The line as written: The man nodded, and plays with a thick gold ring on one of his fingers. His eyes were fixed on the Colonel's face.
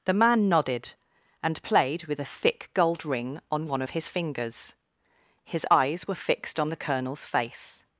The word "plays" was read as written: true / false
false